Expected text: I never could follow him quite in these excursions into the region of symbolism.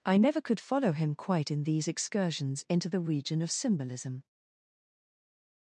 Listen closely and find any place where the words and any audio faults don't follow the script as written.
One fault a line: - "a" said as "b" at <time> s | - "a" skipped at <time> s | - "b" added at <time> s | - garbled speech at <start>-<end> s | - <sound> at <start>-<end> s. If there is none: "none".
none